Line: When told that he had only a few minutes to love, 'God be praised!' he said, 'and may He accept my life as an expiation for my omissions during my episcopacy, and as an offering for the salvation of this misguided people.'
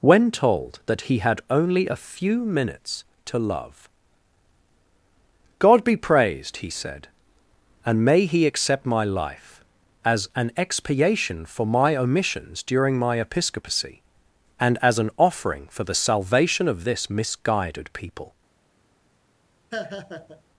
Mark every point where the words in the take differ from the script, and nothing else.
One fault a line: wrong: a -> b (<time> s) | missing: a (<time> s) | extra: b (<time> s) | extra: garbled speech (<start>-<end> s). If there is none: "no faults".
no faults